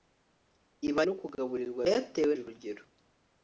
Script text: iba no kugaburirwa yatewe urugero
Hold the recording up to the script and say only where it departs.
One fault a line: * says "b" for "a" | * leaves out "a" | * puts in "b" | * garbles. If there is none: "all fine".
all fine